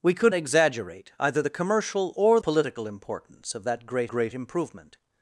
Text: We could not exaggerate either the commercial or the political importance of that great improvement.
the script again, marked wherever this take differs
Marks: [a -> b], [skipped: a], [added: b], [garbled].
We could [skipped: not] exaggerate either the commercial or [skipped: the] political importance of that great [added: great] improvement.